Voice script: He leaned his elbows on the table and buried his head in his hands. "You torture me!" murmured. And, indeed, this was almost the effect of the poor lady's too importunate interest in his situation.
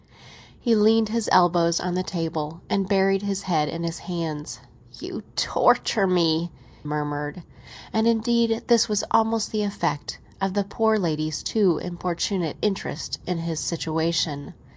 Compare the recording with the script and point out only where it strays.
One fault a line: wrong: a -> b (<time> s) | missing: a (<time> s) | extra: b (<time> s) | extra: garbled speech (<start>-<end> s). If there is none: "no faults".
no faults